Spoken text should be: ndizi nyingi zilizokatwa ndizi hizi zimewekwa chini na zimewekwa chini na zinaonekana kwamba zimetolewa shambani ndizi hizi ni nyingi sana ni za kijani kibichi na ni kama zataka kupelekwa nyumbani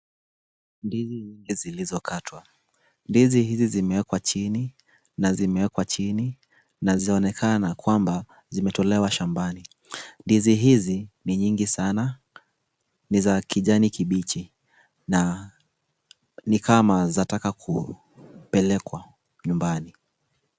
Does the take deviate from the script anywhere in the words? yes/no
no